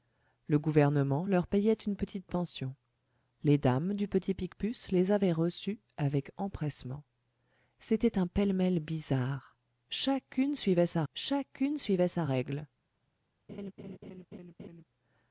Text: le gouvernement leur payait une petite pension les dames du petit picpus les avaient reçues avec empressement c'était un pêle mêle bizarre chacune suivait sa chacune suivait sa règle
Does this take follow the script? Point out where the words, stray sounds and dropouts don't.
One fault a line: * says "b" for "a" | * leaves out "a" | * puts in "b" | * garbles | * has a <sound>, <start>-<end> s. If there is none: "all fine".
* has a laugh, 13.5-14.8 s